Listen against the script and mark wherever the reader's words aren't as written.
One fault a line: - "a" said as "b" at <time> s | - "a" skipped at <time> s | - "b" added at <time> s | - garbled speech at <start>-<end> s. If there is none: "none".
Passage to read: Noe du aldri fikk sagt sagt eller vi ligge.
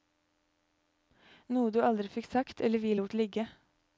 - "sagt" skipped at 2.6 s
- "lot" added at 2.9 s